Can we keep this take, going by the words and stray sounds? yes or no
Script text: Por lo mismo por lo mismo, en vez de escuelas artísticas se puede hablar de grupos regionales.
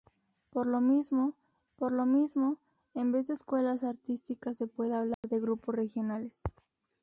no